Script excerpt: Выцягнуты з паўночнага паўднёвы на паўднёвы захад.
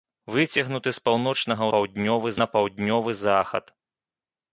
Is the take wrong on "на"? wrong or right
right